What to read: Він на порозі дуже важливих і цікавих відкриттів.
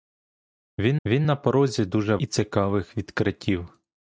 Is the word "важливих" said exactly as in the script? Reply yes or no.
no